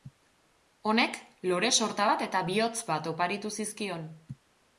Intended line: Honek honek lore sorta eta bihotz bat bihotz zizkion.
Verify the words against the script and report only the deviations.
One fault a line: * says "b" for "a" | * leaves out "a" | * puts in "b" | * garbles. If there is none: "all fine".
* leaves out "honek"
* puts in "bat"
* says "oparitu" for "bihotz"